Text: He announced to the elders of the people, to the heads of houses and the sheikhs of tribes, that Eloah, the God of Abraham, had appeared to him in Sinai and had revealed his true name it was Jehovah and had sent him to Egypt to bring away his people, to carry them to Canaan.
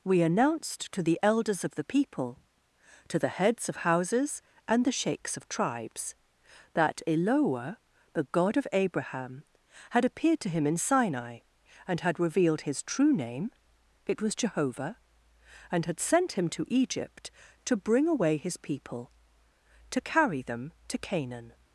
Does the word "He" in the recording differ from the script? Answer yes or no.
yes